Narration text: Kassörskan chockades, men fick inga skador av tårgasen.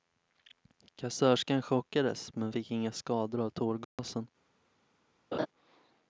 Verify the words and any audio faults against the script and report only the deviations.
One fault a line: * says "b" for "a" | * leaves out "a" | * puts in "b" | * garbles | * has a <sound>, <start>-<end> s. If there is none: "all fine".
* has a dropout, 3.8-4.0 s
* has a laugh, 5.3-5.5 s